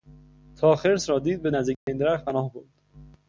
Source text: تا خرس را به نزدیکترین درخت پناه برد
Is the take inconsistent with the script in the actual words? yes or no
yes